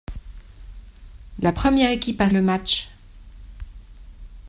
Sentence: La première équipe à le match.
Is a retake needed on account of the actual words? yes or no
no